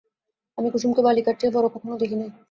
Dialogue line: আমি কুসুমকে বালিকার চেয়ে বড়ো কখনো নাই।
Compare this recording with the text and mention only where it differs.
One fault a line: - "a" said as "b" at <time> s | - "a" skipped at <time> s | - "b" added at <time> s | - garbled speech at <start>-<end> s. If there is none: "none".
- "দেখি" added at 2.0 s